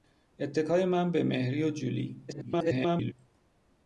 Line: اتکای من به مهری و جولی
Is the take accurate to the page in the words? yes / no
no